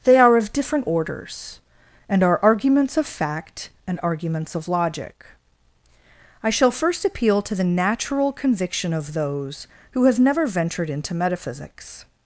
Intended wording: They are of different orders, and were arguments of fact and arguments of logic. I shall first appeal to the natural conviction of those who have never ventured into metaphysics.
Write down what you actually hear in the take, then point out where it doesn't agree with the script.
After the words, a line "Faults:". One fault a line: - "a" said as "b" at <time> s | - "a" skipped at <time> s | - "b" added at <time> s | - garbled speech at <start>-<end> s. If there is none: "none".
They are of different orders, and are arguments of fact and arguments of logic. I shall first appeal to the natural conviction of those who have never ventured into metaphysics.
Faults:
- "were" said as "are" at 2.2 s